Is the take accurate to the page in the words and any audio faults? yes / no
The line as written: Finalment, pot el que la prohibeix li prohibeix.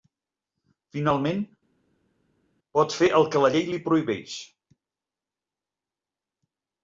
no